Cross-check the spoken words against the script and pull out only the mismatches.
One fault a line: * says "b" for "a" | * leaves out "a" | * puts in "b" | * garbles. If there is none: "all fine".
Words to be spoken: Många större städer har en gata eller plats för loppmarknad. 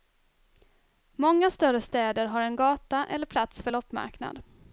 all fine